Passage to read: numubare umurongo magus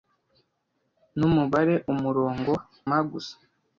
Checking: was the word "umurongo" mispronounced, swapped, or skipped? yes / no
no